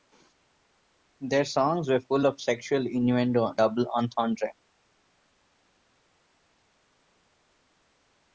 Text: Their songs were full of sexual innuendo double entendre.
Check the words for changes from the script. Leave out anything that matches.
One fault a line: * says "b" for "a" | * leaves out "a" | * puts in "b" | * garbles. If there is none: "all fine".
all fine